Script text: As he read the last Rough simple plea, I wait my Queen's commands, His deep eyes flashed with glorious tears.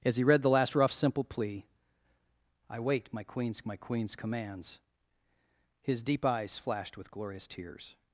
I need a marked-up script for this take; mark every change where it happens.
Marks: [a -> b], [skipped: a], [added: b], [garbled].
As he read the last Rough simple plea, I wait my Queen's [added: my Queen's] commands, His deep eyes flashed with glorious tears.